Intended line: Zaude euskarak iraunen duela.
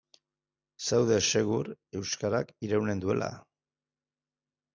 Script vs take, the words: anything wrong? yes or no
yes